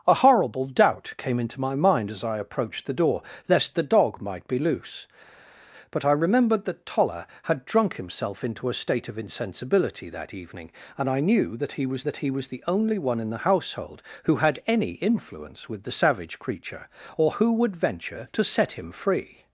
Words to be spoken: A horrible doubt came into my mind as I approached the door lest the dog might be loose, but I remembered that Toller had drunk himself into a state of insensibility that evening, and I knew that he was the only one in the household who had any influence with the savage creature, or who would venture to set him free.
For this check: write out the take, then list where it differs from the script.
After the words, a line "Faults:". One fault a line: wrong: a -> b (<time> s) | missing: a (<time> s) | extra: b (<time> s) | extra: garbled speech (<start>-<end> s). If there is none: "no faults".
A horrible doubt came into my mind as I approached the door lest the dog might be loose, but I remembered that Toller had drunk himself into a state of insensibility that evening, and I knew that he was that he was the only one in the household who had any influence with the savage creature, or who would venture to set him free.
Faults:
extra: that he was (12.0 s)